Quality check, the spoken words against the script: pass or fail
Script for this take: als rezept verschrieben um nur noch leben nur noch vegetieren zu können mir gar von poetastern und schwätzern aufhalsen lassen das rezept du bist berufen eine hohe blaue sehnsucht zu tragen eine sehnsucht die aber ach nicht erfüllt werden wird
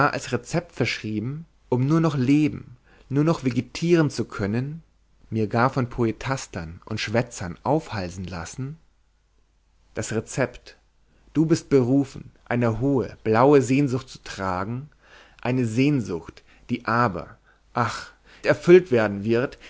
fail